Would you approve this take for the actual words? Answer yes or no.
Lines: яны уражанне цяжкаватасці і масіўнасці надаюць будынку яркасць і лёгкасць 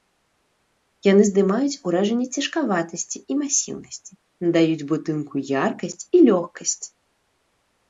no